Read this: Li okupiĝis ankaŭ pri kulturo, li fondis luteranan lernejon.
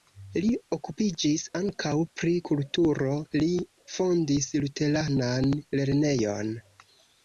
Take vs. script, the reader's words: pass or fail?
pass